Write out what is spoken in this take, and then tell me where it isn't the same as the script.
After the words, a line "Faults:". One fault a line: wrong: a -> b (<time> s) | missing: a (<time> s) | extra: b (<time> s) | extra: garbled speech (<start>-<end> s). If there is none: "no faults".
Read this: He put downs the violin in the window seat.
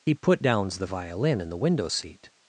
He put downs the violin in the window seat.
Faults:
no faults